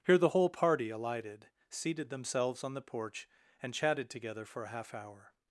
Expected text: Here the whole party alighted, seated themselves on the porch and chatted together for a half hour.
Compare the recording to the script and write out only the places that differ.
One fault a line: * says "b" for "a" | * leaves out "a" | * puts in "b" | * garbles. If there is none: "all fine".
all fine